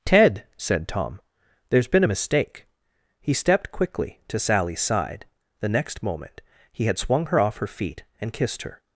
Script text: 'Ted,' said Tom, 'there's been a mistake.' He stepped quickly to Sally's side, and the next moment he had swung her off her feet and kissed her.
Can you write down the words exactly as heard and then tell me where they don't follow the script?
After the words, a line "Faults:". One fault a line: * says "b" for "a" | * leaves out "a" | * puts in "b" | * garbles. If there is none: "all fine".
'Ted,' said Tom, 'there's been a mistake.' He stepped quickly to Sally's side, the next moment he had swung her off her feet and kissed her.
Faults:
* leaves out "and"